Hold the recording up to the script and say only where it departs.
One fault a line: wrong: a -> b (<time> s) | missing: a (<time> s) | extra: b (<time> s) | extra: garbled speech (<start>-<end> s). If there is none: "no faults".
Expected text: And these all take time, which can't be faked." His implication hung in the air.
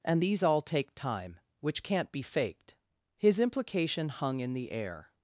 no faults